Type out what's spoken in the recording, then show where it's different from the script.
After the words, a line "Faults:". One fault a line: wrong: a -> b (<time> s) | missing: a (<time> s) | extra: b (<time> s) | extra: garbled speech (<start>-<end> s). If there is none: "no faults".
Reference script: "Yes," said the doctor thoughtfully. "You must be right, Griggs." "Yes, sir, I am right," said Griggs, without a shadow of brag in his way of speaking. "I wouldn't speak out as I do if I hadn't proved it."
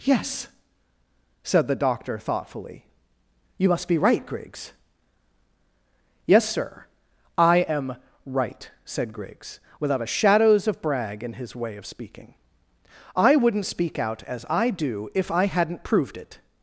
"Yes," said the doctor thoughtfully. "You must be right, Griggs." "Yes, sir, I am right," said Griggs, without a shadows of brag in his way of speaking. "I wouldn't speak out as I do if I hadn't proved it."
Faults:
wrong: shadow -> shadows (10.1 s)